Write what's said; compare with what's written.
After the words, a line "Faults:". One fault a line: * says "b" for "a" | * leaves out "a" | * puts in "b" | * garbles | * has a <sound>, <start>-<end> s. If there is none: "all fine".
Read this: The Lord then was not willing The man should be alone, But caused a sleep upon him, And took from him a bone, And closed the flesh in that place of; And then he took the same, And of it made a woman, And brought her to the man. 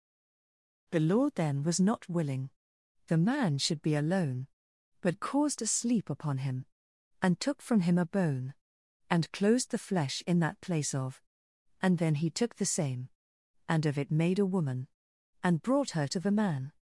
The Lord then was not willing The man should be alone, But caused a sleep upon him, And took from him a bone, And closed the flesh in that place of; And then he took the same, And of it made a woman, And brought her to the man.
Faults:
all fine